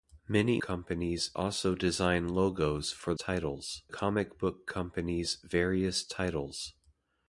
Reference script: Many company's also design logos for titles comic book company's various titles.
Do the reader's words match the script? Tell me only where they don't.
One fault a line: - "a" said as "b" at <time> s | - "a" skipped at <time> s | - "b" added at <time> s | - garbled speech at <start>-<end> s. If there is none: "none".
none